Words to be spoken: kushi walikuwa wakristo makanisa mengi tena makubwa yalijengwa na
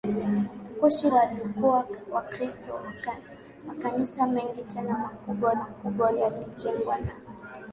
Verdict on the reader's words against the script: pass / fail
fail